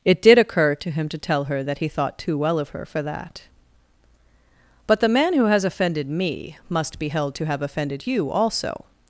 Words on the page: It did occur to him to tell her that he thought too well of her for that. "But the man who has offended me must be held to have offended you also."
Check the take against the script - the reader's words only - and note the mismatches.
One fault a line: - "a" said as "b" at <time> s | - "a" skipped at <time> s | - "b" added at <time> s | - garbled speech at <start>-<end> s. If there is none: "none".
none